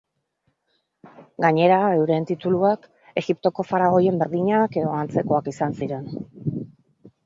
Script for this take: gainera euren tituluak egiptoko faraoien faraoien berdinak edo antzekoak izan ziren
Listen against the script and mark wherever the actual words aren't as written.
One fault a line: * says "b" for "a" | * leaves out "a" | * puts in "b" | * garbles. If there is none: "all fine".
* leaves out "faraoien"